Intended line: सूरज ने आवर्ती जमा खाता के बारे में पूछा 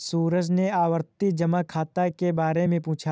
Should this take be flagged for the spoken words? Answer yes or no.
no